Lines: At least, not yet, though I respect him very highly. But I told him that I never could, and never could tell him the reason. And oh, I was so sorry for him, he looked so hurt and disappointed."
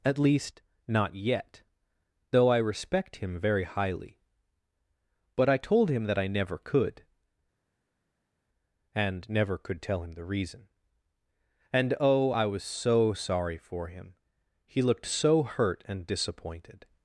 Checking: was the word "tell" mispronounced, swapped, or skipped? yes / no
no